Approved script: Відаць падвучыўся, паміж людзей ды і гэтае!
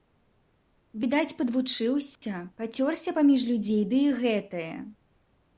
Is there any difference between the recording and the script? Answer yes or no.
yes